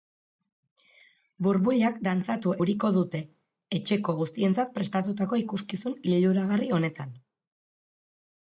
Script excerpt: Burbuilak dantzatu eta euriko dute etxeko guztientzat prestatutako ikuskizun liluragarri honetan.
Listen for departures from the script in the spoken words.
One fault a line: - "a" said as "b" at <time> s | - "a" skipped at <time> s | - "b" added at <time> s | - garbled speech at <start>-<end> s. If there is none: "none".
- "eta" skipped at 2.5 s